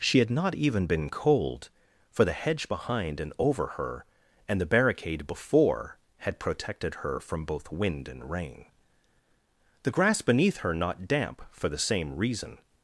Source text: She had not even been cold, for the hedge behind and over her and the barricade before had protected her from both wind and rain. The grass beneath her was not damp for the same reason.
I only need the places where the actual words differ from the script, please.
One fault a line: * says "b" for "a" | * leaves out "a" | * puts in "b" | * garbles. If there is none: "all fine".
* leaves out "was"